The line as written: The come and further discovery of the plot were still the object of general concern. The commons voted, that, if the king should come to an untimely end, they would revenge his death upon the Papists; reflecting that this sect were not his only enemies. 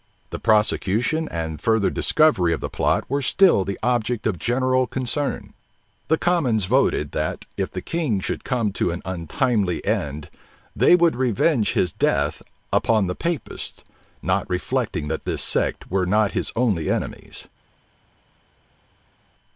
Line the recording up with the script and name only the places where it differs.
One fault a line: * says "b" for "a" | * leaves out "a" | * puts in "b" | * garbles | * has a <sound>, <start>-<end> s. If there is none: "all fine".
* says "prosecution" for "come"
* puts in "not"